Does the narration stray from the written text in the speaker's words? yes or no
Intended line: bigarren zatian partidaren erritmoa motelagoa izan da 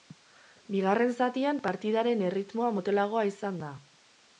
no